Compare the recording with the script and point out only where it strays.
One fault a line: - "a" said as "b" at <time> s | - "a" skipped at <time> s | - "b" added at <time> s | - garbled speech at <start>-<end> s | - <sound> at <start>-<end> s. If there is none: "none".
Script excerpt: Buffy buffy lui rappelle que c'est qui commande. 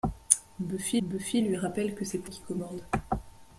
none